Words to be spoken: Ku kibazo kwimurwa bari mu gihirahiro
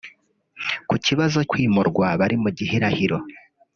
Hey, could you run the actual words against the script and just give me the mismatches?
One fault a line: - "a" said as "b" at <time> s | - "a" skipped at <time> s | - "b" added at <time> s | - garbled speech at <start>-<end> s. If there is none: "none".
none